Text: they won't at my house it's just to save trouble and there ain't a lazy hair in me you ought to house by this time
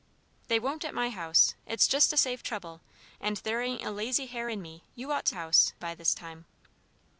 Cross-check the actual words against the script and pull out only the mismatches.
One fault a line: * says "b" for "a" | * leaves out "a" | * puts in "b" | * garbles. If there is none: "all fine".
all fine